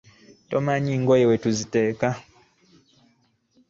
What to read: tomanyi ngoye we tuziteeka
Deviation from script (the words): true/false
false